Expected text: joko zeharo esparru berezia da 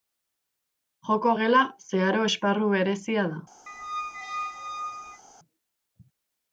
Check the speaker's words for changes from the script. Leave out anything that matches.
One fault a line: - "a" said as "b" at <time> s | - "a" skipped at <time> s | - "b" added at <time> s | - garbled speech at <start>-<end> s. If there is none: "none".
- "gela" added at 1.4 s